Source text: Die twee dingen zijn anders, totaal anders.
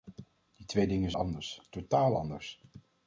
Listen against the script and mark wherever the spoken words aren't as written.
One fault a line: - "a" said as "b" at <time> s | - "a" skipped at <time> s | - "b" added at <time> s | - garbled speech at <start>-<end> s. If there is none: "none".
- "zijn" skipped at 1.1 s